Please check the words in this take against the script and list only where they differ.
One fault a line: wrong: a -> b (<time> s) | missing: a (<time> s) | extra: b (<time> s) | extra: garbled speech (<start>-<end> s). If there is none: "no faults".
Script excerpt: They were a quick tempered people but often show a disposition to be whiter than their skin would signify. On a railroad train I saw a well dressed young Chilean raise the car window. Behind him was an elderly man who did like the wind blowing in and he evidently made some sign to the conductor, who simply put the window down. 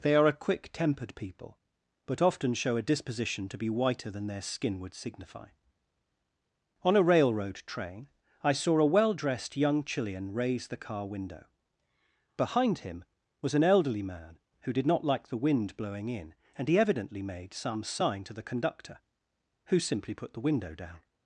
wrong: were -> are (0.1 s)
extra: not (14.9 s)